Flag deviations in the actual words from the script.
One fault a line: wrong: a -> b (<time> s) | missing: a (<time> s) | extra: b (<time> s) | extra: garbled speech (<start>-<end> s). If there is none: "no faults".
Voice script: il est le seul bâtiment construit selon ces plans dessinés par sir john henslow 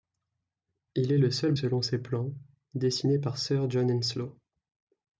missing: bâtiment construit (1.5 s)